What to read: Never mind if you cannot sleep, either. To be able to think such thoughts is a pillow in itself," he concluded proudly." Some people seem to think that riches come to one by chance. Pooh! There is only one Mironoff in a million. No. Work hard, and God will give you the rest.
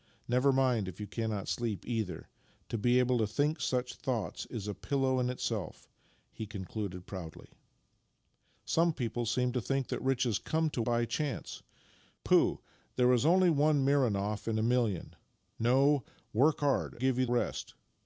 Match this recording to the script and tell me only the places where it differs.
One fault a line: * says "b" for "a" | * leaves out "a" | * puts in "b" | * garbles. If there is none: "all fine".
* leaves out "one"
* leaves out "and God will"
* leaves out "the"